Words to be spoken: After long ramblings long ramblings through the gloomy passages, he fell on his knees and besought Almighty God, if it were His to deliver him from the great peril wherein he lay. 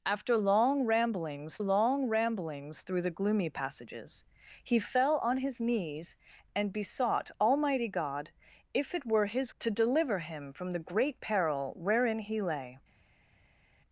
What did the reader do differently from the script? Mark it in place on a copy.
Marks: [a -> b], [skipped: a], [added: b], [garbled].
After long ramblings long ramblings through the gloomy passages, he fell on his knees and besought Almighty God, if it were His to deliver him from the great peril wherein he lay.